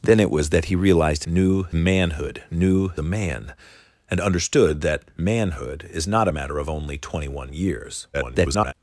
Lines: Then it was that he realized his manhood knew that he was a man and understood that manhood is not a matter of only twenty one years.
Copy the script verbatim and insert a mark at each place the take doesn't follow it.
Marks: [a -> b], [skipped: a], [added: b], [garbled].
Then it was that he realized [his -> knew] manhood knew [skipped: that he was] a man and understood that manhood is not a matter of only twenty one years. [garbled]